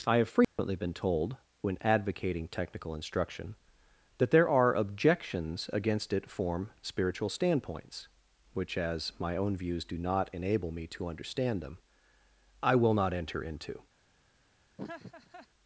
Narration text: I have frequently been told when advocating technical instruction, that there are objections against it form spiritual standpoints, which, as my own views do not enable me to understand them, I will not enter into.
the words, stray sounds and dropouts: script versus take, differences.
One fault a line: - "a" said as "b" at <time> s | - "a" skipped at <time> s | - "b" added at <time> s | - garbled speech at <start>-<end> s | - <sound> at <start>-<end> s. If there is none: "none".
- dropout at 0.4-0.6 s
- laugh at 14.8-15.5 s